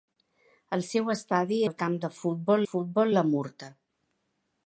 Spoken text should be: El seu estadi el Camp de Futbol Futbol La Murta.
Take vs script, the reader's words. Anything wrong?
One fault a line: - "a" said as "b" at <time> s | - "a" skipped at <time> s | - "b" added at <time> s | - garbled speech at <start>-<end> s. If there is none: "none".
none